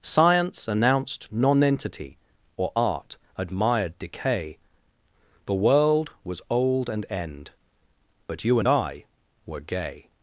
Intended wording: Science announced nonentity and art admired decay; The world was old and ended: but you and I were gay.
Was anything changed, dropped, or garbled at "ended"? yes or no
yes